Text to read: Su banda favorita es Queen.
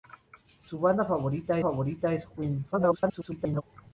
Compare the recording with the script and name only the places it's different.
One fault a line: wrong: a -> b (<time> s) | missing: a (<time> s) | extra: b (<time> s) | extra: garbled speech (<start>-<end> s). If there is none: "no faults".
extra: favorita (1.6 s)
extra: garbled speech (2.7-3.6 s)